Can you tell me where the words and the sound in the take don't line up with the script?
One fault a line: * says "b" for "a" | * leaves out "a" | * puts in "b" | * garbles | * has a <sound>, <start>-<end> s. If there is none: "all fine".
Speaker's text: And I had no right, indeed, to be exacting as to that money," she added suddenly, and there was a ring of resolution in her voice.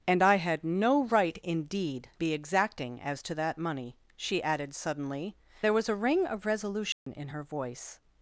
* leaves out "to"
* leaves out "and"
* has a dropout, 6.9-7.1 s